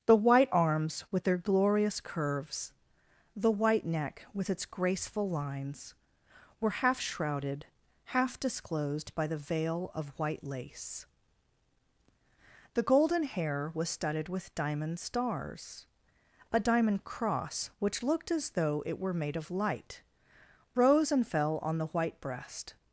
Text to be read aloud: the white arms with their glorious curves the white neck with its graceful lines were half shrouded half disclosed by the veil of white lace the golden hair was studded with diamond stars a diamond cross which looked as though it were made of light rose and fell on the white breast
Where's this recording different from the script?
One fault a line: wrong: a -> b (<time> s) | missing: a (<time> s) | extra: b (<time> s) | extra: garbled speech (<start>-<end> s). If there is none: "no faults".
no faults